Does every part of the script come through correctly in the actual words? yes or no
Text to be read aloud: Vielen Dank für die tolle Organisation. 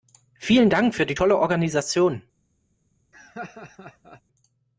yes